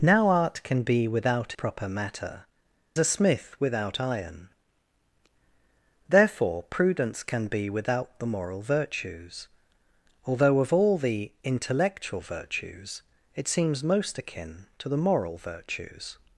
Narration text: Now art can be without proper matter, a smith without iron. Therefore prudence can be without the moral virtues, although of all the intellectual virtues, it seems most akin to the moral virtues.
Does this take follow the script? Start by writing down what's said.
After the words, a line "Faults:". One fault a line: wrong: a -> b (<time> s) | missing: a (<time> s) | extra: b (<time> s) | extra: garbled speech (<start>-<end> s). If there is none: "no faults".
Now art can be without proper matter, a smith without iron. Therefore prudence can be without the moral virtues, although of all the intellectual virtues, it seems most akin to the moral virtues.
Faults:
no faults